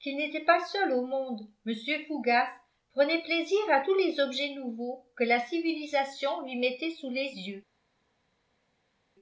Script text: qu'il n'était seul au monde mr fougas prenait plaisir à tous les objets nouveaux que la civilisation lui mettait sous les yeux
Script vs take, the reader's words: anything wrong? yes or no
yes